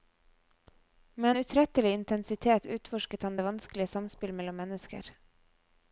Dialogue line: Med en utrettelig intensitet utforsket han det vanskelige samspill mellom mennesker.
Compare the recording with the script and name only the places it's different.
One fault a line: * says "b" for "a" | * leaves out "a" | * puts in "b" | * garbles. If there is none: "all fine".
all fine